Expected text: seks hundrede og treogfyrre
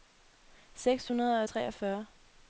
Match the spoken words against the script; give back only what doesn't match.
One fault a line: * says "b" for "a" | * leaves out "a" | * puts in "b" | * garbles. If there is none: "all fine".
all fine